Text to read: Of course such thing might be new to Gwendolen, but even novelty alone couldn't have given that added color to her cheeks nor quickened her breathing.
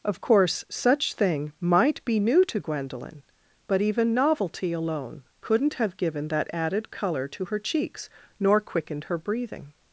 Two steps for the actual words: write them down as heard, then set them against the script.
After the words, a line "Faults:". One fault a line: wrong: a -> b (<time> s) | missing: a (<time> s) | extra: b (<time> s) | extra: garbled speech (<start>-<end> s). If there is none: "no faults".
Of course such thing might be new to Gwendolen, but even novelty alone couldn't have given that added color to her cheeks nor quickened her breathing.
Faults:
no faults